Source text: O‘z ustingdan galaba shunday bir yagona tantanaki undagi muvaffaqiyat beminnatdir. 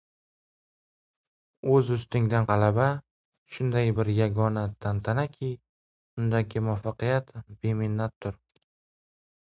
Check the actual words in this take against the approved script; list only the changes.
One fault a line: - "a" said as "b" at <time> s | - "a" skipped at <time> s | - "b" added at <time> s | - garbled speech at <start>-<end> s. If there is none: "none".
none